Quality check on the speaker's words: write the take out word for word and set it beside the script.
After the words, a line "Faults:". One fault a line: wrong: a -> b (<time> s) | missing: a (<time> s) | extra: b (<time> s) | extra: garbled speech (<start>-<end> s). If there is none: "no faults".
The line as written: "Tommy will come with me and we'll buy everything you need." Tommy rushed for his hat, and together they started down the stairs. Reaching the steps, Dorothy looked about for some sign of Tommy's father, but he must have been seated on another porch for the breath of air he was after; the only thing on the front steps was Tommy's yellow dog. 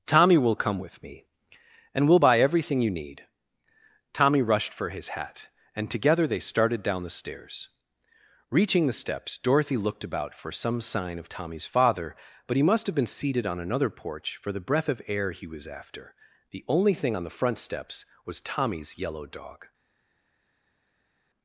"Tommy will come with me and we'll buy everything you need." Tommy rushed for his hat, and together they started down the stairs. Reaching the steps, Dorothy looked about for some sign of Tommy's father, but he must have been seated on another porch for the breath of air he was after; the only thing on the front steps was Tommy's yellow dog.
Faults:
no faults